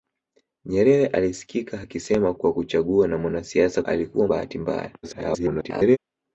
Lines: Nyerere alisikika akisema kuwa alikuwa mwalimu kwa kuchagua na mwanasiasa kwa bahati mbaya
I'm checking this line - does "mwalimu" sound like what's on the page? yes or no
no